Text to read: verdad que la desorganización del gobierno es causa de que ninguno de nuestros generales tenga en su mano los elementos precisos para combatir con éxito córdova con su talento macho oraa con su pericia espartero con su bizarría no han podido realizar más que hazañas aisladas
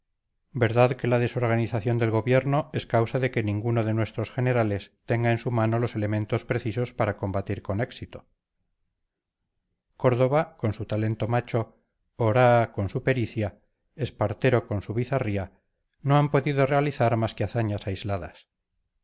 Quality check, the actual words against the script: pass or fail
pass